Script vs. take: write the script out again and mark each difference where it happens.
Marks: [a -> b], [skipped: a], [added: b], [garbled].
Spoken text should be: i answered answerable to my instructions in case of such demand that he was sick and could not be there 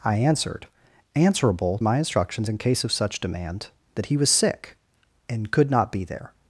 i answered answerable [skipped: to] my instructions in case of such demand that he was sick and could not be there